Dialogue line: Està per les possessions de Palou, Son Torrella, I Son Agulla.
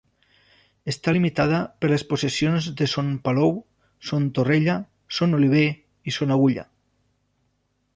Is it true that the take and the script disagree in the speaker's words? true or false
true